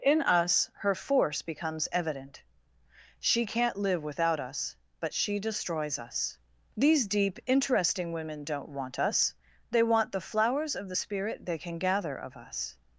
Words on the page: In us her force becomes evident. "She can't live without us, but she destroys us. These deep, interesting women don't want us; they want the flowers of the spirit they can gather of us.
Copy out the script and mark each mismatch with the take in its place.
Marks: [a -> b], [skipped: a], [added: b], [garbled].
In us her force becomes evident. "She can't live without us, but she destroys us. These deep, interesting women don't want us; they want the flowers of the spirit they can gather of us.